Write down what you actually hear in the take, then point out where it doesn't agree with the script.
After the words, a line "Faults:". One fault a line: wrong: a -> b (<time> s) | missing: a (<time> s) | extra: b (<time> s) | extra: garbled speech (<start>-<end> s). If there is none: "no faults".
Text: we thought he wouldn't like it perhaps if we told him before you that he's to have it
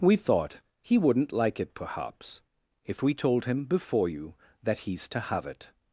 we thought he wouldn't like it perhaps if we told him before you that he's to have it
Faults:
no faults